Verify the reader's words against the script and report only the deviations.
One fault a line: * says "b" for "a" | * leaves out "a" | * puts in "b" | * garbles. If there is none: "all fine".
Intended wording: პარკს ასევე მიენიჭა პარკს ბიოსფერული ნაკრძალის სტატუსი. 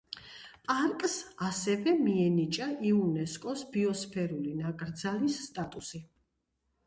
* says "იუნესკოს" for "პარკს"